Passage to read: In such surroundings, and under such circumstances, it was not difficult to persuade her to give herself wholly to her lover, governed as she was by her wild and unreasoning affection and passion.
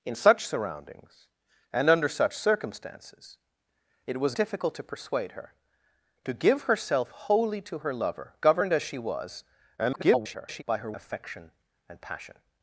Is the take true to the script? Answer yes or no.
no